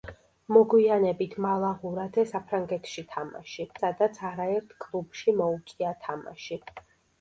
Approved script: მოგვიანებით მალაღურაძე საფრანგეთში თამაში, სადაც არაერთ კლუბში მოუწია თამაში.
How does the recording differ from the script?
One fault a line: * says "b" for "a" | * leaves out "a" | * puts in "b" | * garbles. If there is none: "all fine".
all fine